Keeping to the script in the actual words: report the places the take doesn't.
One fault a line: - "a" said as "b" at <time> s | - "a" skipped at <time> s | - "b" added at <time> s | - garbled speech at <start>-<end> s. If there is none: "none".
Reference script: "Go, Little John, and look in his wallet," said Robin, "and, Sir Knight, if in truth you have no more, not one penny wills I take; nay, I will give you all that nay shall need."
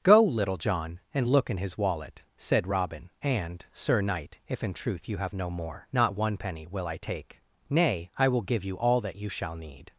- "wills" said as "will" at 6.7 s
- "nay" said as "you" at 9.2 s